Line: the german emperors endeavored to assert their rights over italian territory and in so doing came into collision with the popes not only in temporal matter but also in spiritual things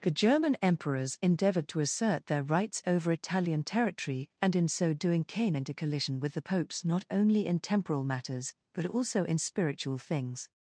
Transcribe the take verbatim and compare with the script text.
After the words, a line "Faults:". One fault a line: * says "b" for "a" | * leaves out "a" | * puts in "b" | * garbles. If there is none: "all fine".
the german emperors endeavored to assert their rights over italian territory and in so doing came into collision with the popes not only in temporal matters but also in spiritual things
Faults:
* says "matters" for "matter"